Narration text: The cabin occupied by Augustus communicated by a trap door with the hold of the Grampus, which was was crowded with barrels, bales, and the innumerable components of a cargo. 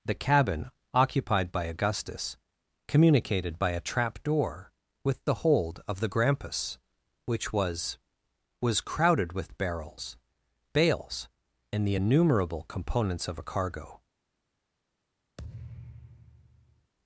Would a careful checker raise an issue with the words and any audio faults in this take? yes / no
yes